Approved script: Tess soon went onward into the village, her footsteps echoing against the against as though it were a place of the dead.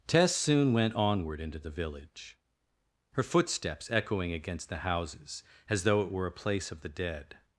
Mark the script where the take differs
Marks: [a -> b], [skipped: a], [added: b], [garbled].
Tess soon went onward into the village, her footsteps echoing against the [against -> houses] as though it were a place of the dead.